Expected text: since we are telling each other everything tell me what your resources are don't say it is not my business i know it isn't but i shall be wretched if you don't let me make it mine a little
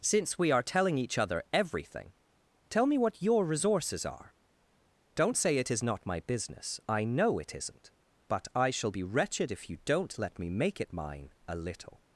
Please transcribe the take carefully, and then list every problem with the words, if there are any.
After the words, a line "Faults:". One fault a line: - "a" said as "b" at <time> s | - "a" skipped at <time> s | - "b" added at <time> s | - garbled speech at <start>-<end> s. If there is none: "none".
since we are telling each other everything tell me what your resources are don't say it is not my business i know it isn't but i shall be wretched if you don't let me make it mine a little
Faults:
none